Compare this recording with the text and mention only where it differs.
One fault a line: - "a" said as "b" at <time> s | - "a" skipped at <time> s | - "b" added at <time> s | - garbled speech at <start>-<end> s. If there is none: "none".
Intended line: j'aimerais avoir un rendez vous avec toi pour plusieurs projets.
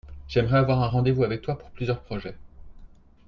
none